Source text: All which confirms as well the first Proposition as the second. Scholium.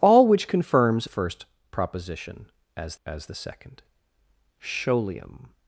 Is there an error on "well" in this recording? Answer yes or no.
yes